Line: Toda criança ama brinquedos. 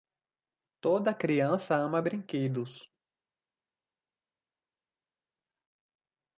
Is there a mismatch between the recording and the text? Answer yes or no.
no